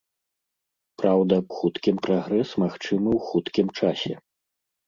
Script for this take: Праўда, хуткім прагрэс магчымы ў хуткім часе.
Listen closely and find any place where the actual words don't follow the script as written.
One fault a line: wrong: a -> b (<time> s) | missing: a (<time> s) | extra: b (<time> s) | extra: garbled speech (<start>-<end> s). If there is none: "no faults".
no faults